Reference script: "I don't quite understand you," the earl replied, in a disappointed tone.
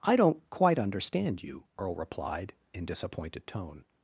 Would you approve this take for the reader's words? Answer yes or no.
no